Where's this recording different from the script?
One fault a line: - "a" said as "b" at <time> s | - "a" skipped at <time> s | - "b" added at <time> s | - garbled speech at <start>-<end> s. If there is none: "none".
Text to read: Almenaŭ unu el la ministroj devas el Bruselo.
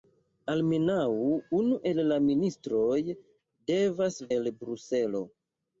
none